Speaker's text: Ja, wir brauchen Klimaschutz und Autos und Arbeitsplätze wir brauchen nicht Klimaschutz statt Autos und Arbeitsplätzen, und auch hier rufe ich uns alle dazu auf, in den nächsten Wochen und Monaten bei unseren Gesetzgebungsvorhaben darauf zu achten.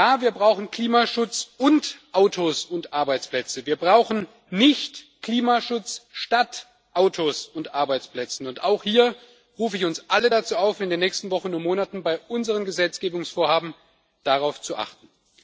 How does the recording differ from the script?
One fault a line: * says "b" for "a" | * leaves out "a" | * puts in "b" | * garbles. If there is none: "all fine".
all fine